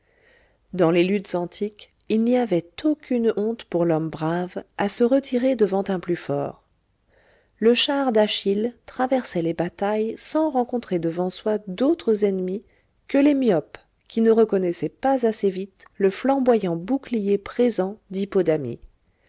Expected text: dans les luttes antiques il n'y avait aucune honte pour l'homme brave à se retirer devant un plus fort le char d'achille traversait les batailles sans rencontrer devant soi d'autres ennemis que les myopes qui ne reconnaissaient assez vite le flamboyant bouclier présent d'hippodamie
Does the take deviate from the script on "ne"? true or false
false